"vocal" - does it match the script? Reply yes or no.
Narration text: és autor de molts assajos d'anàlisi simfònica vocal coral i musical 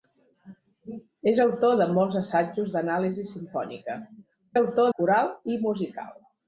no